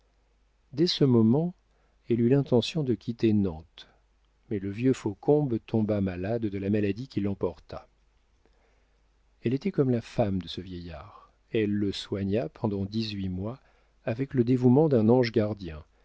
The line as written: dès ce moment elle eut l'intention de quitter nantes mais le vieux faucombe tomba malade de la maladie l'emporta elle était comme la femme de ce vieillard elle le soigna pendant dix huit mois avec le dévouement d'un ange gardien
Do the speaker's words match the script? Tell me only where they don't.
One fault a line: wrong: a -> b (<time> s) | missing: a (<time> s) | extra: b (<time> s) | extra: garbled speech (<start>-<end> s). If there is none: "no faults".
extra: qui (7.1 s)